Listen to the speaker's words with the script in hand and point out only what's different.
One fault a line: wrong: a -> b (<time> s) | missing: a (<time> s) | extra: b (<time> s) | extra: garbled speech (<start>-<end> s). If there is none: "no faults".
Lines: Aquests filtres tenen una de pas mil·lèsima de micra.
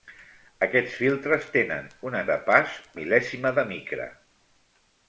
no faults